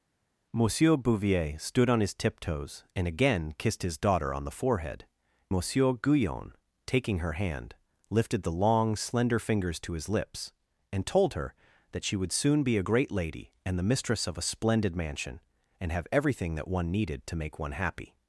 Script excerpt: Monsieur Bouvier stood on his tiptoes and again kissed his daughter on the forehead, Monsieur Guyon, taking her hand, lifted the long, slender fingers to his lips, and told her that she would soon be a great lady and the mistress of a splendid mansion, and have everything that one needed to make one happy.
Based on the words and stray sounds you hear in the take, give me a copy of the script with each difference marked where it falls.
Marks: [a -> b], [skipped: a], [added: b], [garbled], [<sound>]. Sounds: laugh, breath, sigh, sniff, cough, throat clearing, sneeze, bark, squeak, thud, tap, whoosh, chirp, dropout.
Monsieur Bouvier stood on his tiptoes and again kissed his daughter on the forehead, Monsieur Guyon, taking her hand, lifted the long, slender fingers to his lips, and told her that she would soon be a great lady and the mistress of a splendid mansion, and have everything that one needed to make one happy.